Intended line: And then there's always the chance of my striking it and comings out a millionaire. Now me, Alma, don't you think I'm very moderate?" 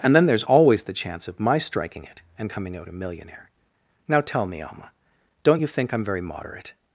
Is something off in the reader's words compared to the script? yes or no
yes